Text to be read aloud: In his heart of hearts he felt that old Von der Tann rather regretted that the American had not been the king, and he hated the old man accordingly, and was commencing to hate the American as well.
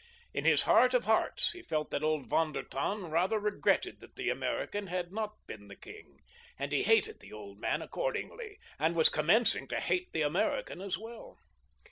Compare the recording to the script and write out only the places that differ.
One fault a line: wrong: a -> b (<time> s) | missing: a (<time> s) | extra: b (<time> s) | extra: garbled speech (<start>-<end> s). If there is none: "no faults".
no faults